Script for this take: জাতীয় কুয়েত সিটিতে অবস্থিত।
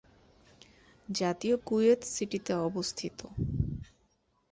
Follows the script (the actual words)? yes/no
yes